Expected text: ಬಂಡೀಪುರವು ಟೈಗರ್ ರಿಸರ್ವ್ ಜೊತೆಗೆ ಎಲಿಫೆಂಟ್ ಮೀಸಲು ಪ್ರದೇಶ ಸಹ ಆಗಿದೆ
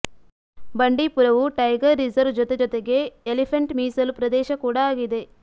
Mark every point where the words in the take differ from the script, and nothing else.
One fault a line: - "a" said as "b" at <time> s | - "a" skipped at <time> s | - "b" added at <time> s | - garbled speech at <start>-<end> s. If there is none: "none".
- "ಜೊತೆ" added at 2.4 s
- "ಸಹ" said as "ಕೂಡ" at 4.6 s